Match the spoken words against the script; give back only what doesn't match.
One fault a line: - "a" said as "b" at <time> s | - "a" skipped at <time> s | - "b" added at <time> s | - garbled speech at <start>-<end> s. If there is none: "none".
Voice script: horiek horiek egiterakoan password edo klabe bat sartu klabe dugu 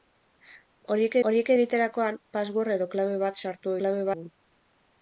none